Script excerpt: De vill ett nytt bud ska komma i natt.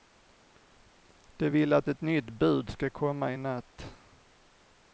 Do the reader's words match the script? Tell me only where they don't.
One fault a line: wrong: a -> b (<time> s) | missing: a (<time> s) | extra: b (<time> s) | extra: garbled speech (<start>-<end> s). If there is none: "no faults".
extra: att (1.7 s)